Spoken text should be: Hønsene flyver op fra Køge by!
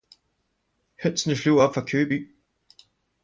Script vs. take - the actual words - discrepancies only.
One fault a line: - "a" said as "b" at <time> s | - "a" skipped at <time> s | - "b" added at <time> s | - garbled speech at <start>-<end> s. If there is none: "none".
none